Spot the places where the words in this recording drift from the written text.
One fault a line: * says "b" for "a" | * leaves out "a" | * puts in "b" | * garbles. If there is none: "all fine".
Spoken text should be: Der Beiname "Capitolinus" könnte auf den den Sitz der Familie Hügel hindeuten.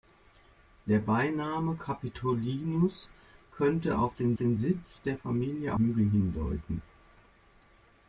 all fine